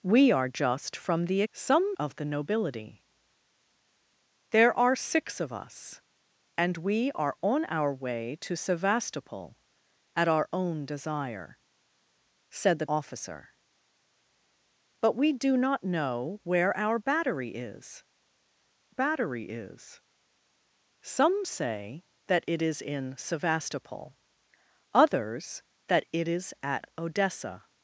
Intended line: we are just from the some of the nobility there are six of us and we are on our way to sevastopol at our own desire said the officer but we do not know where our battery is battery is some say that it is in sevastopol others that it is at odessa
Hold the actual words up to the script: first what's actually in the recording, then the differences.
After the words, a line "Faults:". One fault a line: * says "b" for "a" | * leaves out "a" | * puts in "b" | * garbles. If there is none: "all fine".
we are just from the some of the nobility there are six of us and we are on our way to sevastopol at our own desire said the officer but we do not know where our battery is battery is some say that it is in sevastopol others that it is at odessa
Faults:
all fine